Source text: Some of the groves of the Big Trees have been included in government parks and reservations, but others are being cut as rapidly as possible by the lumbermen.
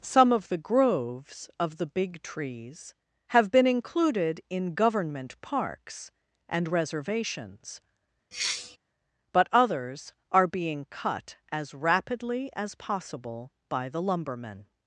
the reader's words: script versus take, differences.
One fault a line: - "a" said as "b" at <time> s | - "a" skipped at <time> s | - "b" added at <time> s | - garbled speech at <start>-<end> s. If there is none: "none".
none